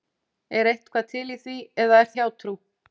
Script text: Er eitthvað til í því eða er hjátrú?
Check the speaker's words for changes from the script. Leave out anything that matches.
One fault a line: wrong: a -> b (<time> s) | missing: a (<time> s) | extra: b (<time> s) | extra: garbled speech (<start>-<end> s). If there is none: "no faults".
no faults